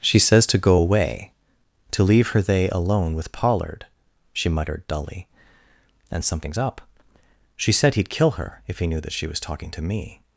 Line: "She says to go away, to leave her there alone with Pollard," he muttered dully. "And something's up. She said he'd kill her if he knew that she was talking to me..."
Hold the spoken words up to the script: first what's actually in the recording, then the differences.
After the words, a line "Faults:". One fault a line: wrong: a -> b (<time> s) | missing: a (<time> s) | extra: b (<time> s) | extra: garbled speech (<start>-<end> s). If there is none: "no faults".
"She says to go away, to leave her they alone with Pollard," she muttered dully. "And something's up. She said he'd kill her if he knew that she was talking to me..."
Faults:
wrong: there -> they (2.4 s)
wrong: he -> she (4.3 s)